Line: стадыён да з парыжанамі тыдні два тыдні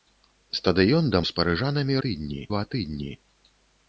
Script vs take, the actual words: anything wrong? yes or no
no